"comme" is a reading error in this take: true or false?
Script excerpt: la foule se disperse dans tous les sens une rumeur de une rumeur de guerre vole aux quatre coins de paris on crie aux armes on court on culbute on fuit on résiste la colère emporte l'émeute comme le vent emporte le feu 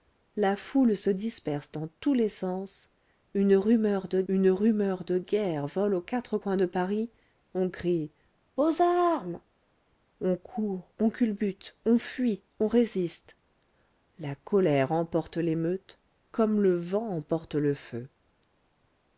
false